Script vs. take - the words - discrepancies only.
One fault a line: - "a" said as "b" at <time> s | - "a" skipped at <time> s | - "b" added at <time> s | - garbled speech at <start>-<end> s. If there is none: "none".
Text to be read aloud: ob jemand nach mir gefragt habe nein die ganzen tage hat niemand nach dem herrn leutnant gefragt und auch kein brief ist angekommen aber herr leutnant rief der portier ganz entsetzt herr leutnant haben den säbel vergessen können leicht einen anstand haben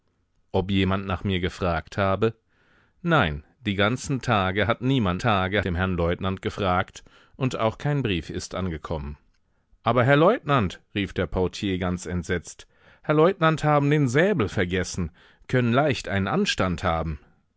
- "nach" said as "tage" at 5.2 s